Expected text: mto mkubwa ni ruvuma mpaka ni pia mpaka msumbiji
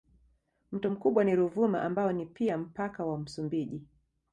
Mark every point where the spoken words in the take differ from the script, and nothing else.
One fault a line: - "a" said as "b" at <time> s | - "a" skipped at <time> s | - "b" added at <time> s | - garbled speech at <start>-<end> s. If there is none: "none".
- "mpaka" said as "ambao" at 1.8 s
- "wa" added at 3.1 s